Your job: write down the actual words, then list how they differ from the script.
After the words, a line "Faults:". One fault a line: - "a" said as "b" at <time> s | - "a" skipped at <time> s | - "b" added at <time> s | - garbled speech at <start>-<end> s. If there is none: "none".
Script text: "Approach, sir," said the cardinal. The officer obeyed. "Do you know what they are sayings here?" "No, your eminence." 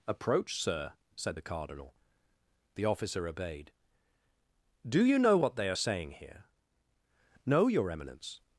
"Approach, sir," said the cardinal. The officer obeyed. "Do you know what they are saying here?" "No, your eminence."
Faults:
- "sayings" said as "saying" at 5.7 s